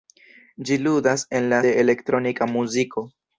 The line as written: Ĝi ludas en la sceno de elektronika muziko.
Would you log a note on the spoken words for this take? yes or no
yes